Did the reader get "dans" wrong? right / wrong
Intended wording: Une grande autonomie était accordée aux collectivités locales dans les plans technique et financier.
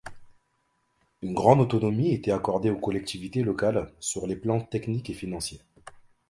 wrong